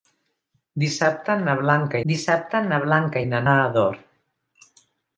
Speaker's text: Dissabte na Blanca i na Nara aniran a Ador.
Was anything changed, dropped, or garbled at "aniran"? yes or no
yes